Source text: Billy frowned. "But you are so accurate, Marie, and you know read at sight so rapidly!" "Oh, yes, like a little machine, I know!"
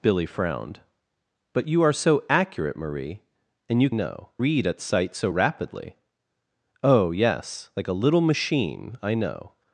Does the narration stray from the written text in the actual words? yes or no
no